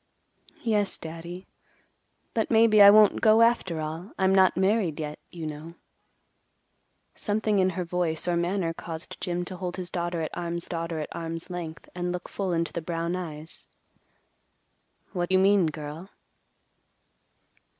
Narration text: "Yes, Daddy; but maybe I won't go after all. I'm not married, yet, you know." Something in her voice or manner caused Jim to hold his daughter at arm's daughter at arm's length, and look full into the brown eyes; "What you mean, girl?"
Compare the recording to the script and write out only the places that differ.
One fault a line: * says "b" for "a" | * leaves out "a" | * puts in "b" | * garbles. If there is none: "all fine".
all fine